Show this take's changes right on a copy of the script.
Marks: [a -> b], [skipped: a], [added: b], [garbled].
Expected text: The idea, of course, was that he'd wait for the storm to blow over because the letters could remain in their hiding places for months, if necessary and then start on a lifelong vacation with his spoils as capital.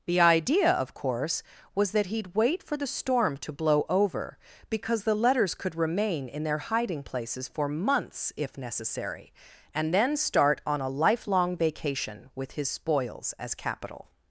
The idea, of course, was that he'd wait for the storm to blow over because the letters could remain in their hiding places for months, if necessary and then start on a lifelong vacation with his spoils as capital.